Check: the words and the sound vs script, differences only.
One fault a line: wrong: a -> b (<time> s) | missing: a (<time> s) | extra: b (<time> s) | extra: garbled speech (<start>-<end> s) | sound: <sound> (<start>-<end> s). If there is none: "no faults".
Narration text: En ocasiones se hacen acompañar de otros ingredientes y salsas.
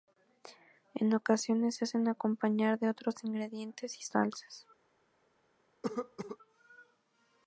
sound: cough (5.8-6.4 s)